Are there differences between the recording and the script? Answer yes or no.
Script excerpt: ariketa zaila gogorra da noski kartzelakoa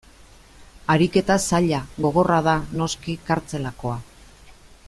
no